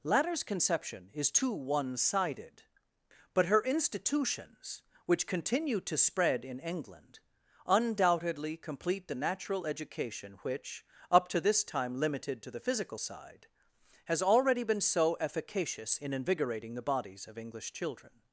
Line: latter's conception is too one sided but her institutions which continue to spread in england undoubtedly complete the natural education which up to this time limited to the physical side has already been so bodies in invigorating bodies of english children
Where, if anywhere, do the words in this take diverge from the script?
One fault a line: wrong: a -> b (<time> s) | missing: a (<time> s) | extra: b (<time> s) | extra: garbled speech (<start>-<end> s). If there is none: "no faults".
wrong: bodies -> efficacious (15.2 s)
extra: the (16.7 s)